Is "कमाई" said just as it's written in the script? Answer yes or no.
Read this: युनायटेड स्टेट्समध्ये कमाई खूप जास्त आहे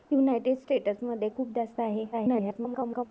no